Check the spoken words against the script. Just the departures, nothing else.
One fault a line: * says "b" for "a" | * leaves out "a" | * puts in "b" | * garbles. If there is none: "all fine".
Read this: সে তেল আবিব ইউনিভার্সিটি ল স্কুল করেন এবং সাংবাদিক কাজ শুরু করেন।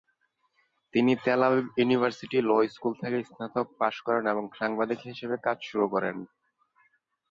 * says "তিনি" for "সে"
* puts in "থেকে স্নাতক পাশ"
* puts in "হিসেবে"